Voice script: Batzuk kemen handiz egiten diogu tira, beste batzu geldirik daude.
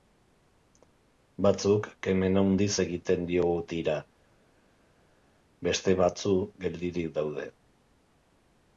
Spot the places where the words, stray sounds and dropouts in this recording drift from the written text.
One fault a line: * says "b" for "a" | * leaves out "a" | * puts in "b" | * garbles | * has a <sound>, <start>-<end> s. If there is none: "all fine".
all fine